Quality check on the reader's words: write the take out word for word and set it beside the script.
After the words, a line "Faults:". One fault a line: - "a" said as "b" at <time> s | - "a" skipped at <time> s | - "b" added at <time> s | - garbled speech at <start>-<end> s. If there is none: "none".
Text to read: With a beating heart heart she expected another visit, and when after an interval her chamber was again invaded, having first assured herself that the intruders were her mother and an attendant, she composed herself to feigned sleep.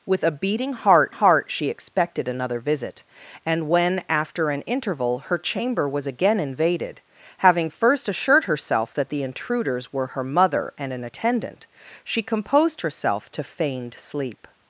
With a beating heart heart she expected another visit, and when after an interval her chamber was again invaded, having first assured herself that the intruders were her mother and an attendant, she composed herself to feigned sleep.
Faults:
none